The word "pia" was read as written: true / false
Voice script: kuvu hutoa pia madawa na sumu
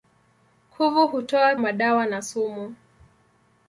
false